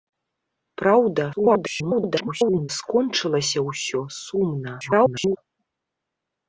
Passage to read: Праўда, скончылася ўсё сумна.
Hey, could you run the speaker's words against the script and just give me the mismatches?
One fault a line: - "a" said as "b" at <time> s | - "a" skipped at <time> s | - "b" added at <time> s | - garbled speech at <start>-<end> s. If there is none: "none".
- garbled speech at 1.3-2.7 s
- garbled speech at 4.8-5.4 s